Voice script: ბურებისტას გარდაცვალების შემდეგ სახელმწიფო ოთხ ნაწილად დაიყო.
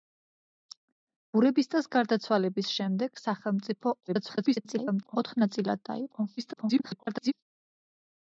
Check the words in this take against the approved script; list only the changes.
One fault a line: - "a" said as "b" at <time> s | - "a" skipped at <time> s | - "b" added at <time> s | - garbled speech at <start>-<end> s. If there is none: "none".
- garbled speech at 4.1-5.2 s
- garbled speech at 6.4-7.3 s